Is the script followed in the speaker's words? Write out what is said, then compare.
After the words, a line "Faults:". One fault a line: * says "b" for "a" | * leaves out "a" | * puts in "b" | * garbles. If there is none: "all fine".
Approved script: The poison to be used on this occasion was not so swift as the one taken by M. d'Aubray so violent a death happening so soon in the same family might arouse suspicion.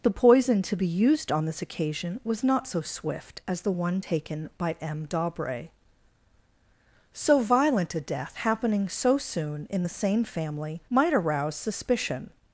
The poison to be used on this occasion was not so swift as the one taken by M. d'Aubray so violent a death happening so soon in the same family might arouse suspicion.
Faults:
all fine